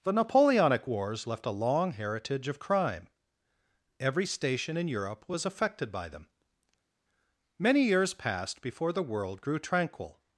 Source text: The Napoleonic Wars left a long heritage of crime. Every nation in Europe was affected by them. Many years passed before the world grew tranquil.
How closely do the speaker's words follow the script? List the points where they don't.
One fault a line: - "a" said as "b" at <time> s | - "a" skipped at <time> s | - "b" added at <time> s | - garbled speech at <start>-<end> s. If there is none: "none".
- "nation" said as "station" at 4.2 s